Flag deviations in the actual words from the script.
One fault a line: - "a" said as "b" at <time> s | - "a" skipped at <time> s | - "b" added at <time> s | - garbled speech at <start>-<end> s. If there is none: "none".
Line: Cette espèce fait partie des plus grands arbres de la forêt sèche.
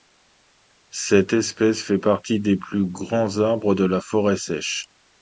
none